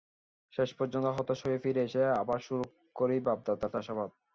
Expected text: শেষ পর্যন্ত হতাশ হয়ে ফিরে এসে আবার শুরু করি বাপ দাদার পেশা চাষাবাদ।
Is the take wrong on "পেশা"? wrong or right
wrong